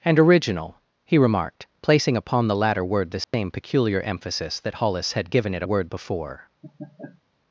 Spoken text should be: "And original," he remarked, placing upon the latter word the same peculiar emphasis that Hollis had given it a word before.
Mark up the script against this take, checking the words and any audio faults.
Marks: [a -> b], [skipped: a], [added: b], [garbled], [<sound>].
"And original," he remarked, placing upon the latter word the same [dropout] peculiar emphasis that Hollis had given it a word before. [laugh]